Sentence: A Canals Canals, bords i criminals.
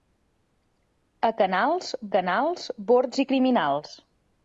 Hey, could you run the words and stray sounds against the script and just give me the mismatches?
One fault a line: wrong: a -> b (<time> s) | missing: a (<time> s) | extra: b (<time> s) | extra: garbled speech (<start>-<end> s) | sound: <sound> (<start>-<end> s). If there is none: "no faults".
no faults